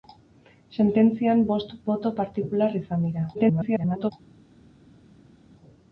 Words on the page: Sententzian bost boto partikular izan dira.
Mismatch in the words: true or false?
true